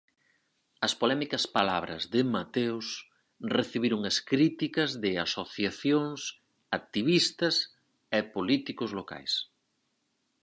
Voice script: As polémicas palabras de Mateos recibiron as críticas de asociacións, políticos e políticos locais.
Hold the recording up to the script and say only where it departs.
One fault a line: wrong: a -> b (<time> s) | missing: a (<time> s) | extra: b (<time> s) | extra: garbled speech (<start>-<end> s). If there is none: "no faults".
wrong: políticos -> activistas (6.8 s)